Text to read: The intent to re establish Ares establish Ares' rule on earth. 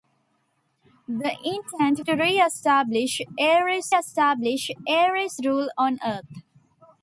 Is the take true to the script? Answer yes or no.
yes